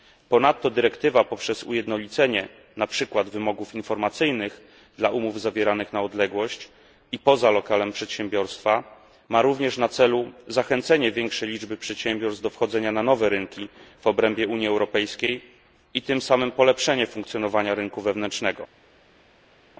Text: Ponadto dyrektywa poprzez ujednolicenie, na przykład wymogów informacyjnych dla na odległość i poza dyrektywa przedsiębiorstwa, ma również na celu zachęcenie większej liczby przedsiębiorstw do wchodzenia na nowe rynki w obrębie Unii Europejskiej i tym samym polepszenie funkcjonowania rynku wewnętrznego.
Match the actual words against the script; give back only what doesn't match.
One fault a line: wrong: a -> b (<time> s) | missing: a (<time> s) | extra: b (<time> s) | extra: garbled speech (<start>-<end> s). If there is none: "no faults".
extra: umów zawieranych (5.1 s)
wrong: dyrektywa -> lokalem (7.5 s)